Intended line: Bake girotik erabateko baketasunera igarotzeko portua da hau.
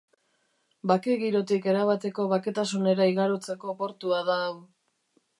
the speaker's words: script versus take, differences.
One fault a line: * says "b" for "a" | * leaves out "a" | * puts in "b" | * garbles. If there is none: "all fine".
all fine